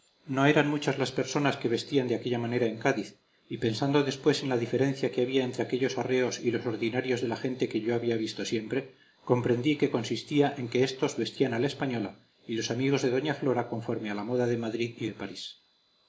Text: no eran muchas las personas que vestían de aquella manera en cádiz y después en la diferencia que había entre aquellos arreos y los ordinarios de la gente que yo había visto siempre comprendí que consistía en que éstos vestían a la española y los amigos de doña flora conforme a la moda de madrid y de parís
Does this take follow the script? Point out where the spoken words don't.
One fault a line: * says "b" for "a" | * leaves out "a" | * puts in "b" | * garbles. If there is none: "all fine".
* puts in "pensando"